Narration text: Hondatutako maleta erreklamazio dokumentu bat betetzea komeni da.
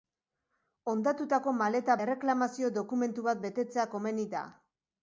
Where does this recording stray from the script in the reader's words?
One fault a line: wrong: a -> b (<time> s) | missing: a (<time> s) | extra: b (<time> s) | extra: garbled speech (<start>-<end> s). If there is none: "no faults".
no faults